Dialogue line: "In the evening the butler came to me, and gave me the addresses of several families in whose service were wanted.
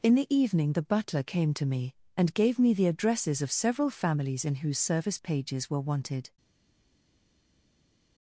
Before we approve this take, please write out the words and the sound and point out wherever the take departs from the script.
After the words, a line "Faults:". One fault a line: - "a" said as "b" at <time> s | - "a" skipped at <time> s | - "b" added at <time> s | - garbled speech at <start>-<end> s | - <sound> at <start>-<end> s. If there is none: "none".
"In the evening the butler came to me, and gave me the addresses of several families in whose service pages were wanted.
Faults:
- "pages" added at 5.2 s